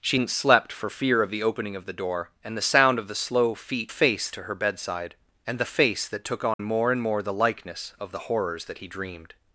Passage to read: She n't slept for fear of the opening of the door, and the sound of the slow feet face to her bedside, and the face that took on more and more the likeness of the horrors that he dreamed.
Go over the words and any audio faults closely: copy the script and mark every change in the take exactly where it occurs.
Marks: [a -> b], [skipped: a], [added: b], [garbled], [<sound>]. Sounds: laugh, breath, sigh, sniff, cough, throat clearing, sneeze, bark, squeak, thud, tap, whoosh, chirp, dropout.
She n't slept for fear of the opening of the door, and the sound of the slow feet face to her bedside, and the face that took on [dropout] more and more the likeness of the horrors that he dreamed.